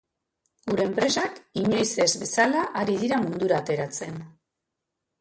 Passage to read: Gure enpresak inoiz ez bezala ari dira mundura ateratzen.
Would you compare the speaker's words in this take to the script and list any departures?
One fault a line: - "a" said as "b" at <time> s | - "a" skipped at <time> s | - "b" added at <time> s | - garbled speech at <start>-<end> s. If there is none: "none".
none